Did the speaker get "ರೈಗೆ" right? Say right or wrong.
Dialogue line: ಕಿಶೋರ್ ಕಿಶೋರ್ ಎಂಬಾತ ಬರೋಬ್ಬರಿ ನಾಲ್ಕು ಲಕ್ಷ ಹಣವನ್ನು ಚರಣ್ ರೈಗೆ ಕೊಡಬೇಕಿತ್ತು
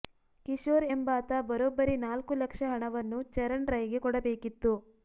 right